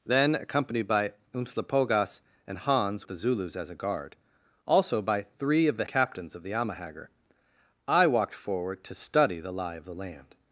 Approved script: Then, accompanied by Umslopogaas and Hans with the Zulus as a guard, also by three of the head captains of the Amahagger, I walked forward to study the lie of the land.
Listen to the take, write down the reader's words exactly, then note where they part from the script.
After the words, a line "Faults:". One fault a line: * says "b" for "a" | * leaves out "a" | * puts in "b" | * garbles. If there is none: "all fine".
Then, accompanied by Umslopogaas and Hans the Zulus as a guard, also by three of the captains of the Amahagger, I walked forward to study the lie of the land.
Faults:
* leaves out "with"
* leaves out "head"